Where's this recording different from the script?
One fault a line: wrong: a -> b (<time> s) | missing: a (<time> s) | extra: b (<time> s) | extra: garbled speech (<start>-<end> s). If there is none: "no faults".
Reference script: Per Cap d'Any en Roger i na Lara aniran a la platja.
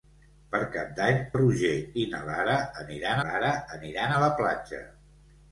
missing: en (1.2 s)
extra: Lara aniran (3.3 s)